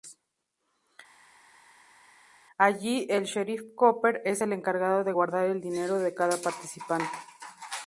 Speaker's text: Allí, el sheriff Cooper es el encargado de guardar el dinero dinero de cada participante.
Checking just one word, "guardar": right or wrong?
right